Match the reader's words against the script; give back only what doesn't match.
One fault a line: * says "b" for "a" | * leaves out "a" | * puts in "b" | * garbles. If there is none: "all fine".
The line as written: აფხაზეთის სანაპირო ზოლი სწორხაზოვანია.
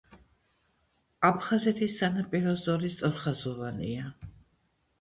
all fine